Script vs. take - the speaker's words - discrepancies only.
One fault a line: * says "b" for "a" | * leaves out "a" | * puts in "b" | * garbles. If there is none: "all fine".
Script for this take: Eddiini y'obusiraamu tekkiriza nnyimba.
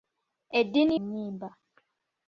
* leaves out "y'obusiraamu tekkiriza"